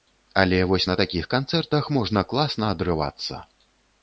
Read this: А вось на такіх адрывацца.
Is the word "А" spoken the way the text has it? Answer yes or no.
no